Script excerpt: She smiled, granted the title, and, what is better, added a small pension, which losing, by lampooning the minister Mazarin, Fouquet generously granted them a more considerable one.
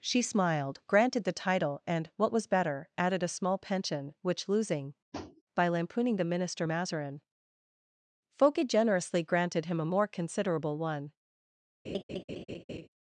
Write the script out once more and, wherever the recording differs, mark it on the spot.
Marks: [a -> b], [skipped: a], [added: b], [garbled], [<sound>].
She smiled, granted the title, and, what [is -> was] better, added a small pension, which losing, [tap] by lampooning the minister Mazarin, Fouquet generously granted [them -> him] a more considerable one. [laugh]